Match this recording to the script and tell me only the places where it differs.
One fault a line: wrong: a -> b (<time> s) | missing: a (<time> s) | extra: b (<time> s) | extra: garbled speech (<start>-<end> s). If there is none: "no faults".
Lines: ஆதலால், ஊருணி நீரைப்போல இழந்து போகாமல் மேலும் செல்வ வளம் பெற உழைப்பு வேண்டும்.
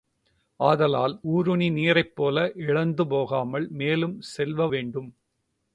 missing: வளம் பெற உழைப்பு (4.7 s)